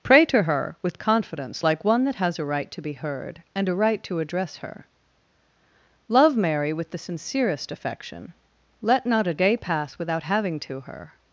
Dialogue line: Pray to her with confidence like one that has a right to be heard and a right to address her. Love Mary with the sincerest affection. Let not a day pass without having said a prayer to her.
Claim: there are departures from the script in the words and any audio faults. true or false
true